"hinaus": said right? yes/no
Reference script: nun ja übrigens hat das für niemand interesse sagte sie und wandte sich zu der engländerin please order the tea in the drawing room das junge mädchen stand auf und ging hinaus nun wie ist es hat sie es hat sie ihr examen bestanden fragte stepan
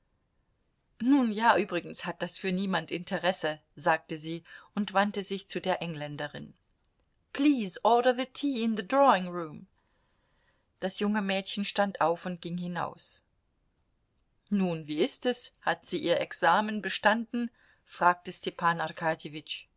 yes